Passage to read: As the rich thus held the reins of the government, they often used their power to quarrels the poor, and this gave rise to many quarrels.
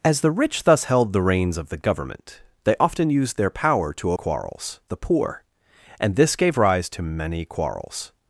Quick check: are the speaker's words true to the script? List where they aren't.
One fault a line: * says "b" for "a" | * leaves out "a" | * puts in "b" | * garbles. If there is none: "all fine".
all fine